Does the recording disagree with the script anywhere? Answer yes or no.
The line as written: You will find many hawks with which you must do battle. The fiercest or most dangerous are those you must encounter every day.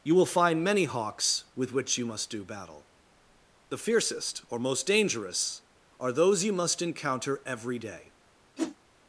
no